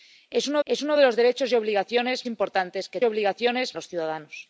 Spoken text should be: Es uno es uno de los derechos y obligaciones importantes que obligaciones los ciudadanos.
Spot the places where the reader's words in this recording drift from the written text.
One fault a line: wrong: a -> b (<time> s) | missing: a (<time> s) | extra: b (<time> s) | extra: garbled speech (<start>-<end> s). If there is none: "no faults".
no faults